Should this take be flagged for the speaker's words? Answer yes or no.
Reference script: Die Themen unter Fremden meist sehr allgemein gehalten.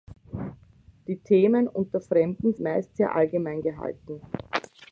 no